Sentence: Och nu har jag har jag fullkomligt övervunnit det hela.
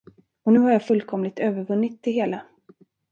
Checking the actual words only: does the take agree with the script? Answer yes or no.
no